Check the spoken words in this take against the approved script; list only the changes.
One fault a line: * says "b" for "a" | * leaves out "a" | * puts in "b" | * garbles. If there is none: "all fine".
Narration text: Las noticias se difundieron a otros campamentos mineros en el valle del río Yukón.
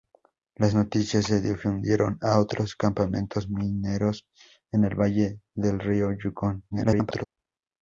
* garbles